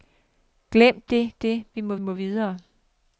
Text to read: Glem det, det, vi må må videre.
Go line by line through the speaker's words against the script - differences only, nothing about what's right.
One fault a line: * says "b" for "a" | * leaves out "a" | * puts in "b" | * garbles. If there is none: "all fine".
all fine